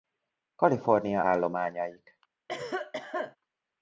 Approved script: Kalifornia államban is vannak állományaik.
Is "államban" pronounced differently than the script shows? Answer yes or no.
yes